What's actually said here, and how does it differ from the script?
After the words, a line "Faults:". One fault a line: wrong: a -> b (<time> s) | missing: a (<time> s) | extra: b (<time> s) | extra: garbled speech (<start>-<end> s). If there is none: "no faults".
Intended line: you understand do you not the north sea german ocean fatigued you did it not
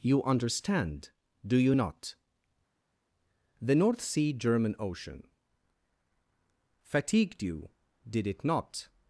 you understand do you not the north sea german ocean fatigued you did it not
Faults:
no faults